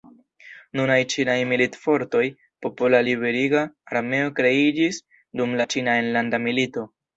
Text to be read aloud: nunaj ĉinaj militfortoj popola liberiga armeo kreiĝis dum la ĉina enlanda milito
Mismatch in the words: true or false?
false